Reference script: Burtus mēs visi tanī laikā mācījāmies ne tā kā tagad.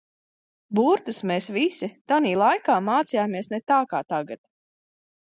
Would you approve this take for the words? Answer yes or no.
yes